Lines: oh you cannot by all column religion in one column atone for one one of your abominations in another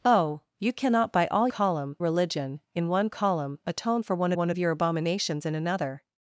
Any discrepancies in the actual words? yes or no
no